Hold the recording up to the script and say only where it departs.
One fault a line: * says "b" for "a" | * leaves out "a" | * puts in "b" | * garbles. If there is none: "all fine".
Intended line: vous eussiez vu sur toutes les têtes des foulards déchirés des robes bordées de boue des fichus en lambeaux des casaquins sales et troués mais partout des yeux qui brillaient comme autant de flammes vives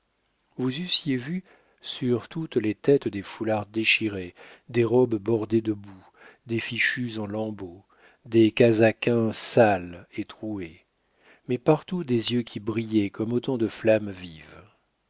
all fine